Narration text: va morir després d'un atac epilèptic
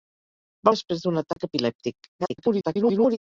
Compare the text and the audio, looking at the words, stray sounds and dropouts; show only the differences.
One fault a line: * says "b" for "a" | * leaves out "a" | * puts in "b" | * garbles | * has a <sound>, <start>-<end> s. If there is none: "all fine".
* leaves out "morir"
* has a dropout, 1.3-1.4 s
* garbles